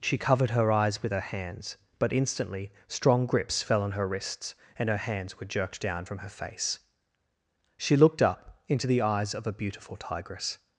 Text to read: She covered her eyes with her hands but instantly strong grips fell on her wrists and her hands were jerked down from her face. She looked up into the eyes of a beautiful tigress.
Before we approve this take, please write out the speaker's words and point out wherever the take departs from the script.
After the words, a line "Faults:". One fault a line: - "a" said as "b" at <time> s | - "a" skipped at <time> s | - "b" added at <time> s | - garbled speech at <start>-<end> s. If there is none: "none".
She covered her eyes with her hands but instantly strong grips fell on her wrists and her hands were jerked down from her face. She looked up into the eyes of a beautiful tigress.
Faults:
none